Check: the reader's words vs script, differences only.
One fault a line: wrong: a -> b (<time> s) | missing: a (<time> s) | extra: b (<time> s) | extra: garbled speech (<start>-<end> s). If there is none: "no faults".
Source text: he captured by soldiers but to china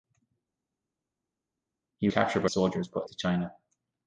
no faults